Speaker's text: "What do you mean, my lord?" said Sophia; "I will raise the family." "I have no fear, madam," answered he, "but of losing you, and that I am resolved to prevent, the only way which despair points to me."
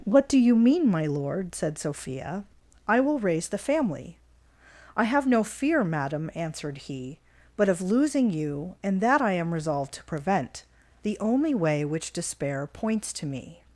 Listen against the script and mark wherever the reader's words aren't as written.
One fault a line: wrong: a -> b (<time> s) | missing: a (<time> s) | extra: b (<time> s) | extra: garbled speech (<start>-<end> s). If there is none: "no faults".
no faults